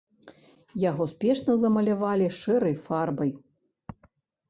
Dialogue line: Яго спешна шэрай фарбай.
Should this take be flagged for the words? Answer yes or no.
yes